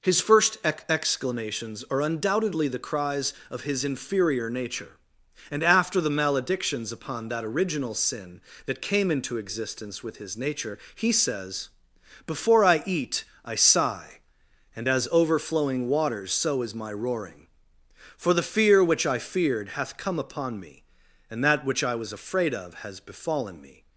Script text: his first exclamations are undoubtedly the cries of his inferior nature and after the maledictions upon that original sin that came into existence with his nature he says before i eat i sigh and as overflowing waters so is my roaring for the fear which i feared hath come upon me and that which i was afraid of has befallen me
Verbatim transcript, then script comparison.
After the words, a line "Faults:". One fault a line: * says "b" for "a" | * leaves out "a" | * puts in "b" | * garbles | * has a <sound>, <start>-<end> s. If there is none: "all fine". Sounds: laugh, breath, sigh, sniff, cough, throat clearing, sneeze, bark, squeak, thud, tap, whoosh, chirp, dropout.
his first ex exclamations are undoubtedly the cries of his inferior nature and after the maledictions upon that original sin that came into existence with his nature he says before i eat i sigh and as overflowing waters so is my roaring for the fear which i feared hath come upon me and that which i was afraid of has befallen me
Faults:
* puts in "ex"